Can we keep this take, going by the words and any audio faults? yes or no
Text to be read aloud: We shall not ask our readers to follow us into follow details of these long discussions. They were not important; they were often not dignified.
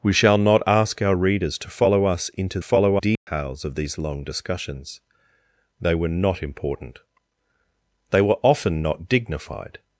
no